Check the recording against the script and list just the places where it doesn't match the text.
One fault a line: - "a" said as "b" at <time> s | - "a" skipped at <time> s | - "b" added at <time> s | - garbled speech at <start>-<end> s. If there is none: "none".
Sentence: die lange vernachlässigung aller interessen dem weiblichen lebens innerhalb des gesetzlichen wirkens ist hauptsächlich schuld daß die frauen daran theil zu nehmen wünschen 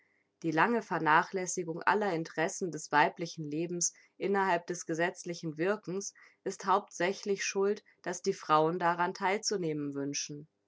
- "dem" said as "des" at 2.7 s